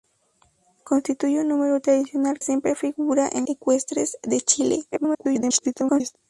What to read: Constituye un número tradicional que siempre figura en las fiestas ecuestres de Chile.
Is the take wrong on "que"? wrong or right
wrong